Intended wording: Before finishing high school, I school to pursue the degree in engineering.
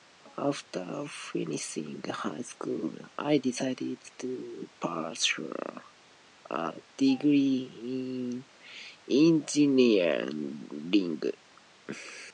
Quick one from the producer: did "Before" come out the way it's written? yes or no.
no